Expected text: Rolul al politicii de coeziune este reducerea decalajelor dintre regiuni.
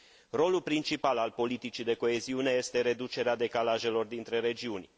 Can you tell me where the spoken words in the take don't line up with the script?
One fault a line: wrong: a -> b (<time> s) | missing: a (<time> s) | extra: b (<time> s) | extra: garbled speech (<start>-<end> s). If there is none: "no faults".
extra: principal (0.6 s)